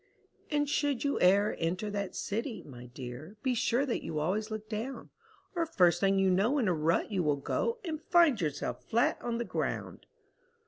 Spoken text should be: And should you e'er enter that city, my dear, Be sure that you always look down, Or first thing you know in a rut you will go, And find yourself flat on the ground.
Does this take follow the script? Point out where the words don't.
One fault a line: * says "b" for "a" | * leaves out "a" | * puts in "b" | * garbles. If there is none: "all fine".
all fine